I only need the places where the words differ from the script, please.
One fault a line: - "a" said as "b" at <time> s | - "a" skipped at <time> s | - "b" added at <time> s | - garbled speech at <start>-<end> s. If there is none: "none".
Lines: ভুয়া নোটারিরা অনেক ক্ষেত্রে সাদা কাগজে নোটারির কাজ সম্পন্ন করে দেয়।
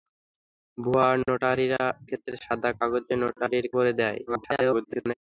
- "অনেক" skipped at 1.8 s
- "কাজ সম্পন্ন" skipped at 3.7 s
- garbled speech at 4.3-5.1 s